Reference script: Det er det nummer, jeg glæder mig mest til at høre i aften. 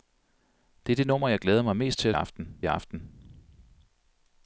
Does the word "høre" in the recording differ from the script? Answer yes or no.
yes